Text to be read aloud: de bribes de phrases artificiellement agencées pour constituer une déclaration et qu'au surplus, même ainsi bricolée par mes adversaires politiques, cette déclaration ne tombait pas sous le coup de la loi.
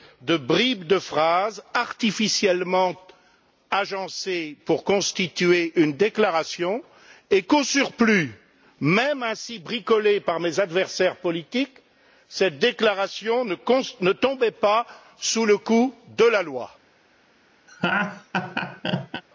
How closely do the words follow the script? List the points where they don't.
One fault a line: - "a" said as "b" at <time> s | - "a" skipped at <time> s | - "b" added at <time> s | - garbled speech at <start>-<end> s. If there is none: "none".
none